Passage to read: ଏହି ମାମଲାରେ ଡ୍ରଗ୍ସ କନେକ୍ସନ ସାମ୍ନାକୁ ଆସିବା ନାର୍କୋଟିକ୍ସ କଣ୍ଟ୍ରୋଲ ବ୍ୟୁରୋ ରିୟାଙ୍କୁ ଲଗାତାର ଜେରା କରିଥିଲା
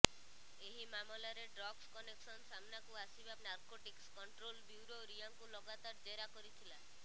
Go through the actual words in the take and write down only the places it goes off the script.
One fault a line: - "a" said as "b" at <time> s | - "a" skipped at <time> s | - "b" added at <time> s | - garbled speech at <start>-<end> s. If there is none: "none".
none